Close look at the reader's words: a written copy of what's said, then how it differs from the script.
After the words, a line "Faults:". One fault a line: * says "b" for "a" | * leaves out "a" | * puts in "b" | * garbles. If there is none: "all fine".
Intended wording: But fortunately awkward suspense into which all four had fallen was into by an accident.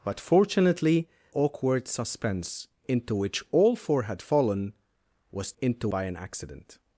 But fortunately awkward suspense into which all four had fallen was into by an accident.
Faults:
all fine